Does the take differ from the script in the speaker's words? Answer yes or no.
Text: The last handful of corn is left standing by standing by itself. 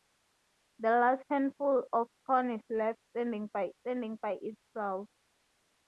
no